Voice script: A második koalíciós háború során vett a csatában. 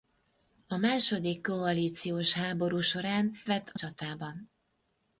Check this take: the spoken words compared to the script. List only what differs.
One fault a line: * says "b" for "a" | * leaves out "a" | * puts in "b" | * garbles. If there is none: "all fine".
all fine